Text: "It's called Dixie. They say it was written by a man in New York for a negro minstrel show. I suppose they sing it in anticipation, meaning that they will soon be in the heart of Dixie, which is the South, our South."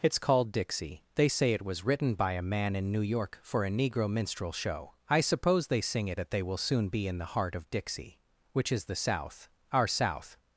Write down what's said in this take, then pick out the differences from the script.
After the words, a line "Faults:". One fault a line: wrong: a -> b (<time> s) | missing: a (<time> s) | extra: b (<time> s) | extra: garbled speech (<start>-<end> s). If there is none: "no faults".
"It's called Dixie. They say it was written by a man in New York for a negro minstrel show. I suppose they sing it that they will soon be in the heart of Dixie, which is the South, our South."
Faults:
missing: in anticipation meaning (6.2 s)